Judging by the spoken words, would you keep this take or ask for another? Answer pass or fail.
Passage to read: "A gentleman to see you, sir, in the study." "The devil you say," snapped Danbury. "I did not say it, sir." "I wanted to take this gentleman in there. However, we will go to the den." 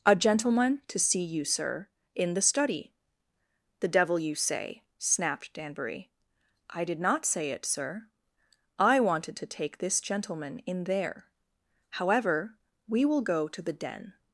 pass